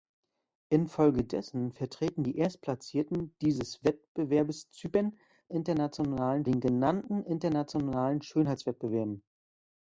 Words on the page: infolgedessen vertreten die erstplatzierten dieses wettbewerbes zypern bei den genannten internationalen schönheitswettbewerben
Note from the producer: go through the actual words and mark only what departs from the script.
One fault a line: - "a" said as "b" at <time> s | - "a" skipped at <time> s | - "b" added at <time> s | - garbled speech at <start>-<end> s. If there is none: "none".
- "bei" said as "internationalen" at 5.5 s